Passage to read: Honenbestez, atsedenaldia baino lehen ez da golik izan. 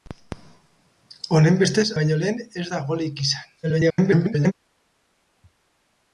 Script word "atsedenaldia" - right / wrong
wrong